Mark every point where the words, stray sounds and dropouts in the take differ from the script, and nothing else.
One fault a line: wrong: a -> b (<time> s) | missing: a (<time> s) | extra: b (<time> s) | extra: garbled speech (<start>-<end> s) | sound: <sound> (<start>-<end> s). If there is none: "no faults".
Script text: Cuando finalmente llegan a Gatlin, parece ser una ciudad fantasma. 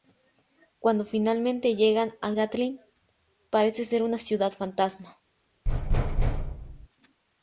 sound: thud (5.7-6.9 s)